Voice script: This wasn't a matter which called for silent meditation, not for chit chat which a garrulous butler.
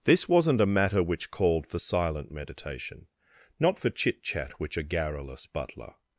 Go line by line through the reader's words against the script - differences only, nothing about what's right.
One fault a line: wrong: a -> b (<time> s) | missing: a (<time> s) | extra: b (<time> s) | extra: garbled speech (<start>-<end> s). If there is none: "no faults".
no faults